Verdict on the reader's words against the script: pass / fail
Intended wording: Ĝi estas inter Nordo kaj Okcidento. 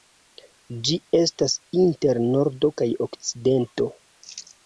pass